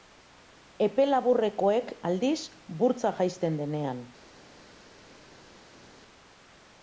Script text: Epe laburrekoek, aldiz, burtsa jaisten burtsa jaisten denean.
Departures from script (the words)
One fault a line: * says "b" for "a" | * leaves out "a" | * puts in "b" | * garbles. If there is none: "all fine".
* leaves out "burtsa jaisten"